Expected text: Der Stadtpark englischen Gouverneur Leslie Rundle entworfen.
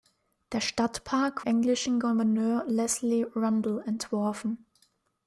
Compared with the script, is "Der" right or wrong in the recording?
right